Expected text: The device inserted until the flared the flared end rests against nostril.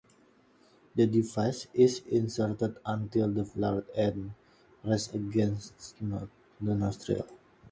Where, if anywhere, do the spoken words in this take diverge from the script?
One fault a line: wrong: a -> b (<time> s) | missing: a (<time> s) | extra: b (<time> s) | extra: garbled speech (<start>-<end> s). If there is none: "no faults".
extra: is (1.8 s)
missing: the flared (3.9 s)
extra: the (6.0 s)